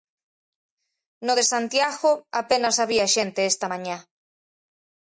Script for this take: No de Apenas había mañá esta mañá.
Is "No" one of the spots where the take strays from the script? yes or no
no